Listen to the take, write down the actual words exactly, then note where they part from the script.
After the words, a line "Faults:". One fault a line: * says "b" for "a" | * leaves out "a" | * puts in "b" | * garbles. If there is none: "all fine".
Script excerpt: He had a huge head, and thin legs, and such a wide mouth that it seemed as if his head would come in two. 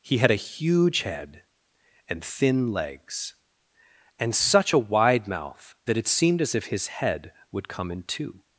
He had a huge head, and thin legs, and such a wide mouth that it seemed as if his head would come in two.
Faults:
all fine